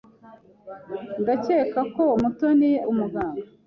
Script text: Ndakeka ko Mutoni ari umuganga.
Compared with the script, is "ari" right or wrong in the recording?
wrong